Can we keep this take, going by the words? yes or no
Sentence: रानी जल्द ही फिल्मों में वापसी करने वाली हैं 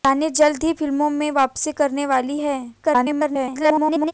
no